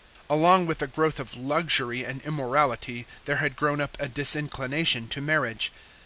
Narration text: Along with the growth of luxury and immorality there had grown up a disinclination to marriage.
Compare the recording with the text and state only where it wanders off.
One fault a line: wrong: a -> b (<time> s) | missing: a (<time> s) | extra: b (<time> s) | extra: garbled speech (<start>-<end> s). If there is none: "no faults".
no faults